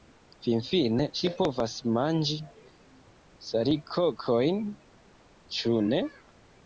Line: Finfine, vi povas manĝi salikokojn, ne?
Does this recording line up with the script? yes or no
no